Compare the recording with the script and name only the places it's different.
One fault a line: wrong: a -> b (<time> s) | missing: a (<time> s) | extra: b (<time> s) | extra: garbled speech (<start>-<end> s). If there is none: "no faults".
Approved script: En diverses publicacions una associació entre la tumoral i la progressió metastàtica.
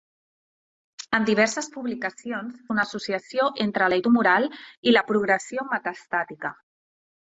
no faults